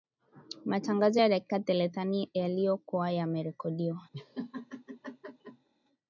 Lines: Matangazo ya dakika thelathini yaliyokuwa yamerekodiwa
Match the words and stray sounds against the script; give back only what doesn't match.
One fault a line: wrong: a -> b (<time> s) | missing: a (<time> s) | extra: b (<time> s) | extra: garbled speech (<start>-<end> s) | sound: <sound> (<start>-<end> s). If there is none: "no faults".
sound: laugh (4.1-5.7 s)